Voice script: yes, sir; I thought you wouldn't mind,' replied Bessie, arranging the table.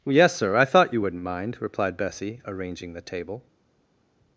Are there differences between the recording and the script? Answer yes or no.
no